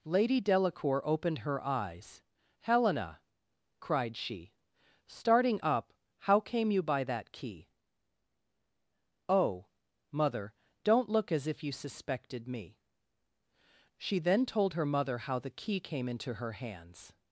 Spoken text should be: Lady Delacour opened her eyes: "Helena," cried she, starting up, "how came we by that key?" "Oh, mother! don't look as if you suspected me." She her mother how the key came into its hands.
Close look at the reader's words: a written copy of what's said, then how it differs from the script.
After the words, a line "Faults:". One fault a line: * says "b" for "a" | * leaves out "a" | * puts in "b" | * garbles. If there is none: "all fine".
Lady Delacour opened her eyes: "Helena," cried she, starting up, "how came you by that key?" "Oh, mother! don't look as if you suspected me." She then told her mother how the key came into her hands.
Faults:
* says "you" for "we"
* puts in "then told"
* says "her" for "its"